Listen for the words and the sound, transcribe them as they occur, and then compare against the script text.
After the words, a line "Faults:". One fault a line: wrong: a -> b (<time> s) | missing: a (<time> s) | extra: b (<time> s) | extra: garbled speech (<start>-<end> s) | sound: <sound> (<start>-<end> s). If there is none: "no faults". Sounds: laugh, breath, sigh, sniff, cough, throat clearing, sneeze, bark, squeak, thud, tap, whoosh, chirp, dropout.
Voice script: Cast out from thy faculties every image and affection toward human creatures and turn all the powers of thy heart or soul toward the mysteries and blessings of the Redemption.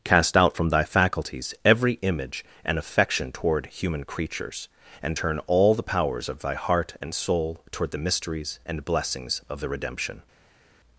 Cast out from thy faculties every image and affection toward human creatures and turn all the powers of thy heart and soul toward the mysteries and blessings of the Redemption.
Faults:
wrong: or -> and (7.0 s)